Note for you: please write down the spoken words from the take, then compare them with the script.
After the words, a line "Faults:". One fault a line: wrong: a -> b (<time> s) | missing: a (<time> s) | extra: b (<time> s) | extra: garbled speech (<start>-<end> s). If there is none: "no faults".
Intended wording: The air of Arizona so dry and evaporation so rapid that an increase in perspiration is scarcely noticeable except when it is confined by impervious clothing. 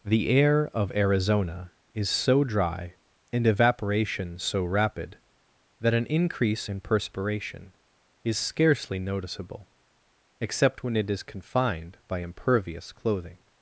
The air of Arizona is so dry and evaporation so rapid that an increase in perspiration is scarcely noticeable except when it is confined by impervious clothing.
Faults:
extra: is (1.9 s)